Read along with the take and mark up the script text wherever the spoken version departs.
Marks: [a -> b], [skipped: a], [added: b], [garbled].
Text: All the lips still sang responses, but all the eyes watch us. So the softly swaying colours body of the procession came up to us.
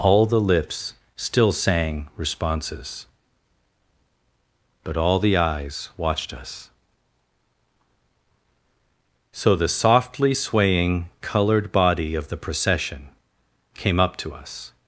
All the lips still sang responses, but all the eyes [watch -> watched] us. So the softly swaying [colours -> coloured] body of the procession came up to us.